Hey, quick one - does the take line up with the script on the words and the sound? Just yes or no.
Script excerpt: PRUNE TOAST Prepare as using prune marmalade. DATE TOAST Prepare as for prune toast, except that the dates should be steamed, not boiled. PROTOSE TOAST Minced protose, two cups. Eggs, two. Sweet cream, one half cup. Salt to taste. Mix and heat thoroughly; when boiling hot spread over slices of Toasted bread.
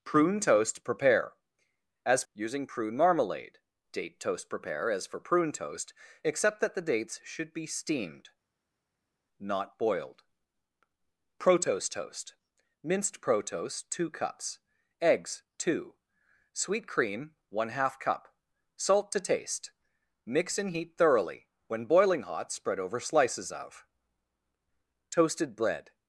yes